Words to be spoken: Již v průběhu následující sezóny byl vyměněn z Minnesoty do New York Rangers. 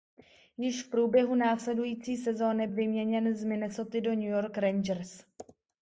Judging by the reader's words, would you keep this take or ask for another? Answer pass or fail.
fail